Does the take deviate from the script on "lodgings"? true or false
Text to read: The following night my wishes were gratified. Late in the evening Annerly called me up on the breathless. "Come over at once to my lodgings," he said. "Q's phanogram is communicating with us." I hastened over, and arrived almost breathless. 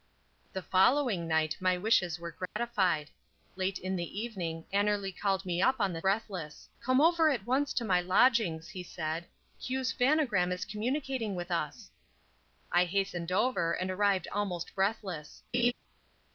false